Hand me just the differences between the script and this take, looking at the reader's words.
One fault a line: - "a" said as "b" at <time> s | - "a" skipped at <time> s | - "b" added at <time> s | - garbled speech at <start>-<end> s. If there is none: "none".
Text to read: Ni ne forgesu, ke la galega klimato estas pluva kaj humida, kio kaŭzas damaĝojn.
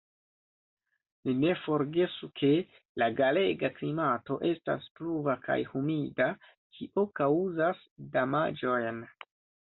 none